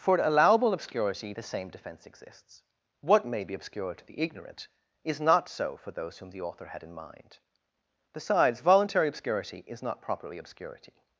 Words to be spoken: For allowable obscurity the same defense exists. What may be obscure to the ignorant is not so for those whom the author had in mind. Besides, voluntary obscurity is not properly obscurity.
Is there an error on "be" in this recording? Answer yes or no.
no